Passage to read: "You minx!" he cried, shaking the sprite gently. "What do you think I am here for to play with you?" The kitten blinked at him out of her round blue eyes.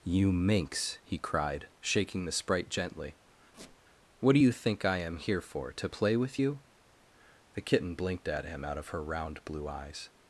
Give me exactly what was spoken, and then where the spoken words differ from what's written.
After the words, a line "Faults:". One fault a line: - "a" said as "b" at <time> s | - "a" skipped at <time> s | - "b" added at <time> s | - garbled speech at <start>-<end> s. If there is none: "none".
"You minx!" he cried, shaking the sprite gently. "What do you think I am here for to play with you?" The kitten blinked at him out of her round blue eyes.
Faults:
none